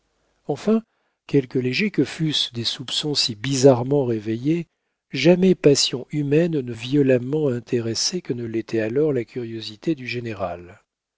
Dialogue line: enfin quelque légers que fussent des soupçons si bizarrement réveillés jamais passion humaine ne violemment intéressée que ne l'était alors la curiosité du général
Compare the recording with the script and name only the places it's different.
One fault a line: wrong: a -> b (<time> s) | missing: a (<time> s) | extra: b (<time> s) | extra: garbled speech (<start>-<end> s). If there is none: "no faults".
no faults